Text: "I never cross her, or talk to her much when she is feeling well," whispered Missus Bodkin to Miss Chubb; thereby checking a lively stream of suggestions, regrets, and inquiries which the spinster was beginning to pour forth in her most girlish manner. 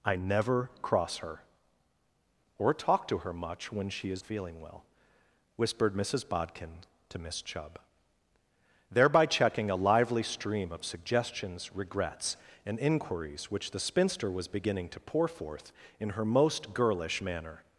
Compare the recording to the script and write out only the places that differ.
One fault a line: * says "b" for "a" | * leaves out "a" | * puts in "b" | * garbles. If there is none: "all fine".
all fine